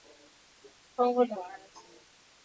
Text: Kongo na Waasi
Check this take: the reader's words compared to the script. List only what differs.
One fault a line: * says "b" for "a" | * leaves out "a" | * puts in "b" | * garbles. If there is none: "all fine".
all fine